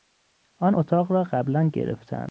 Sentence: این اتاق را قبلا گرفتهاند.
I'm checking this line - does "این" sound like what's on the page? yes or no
no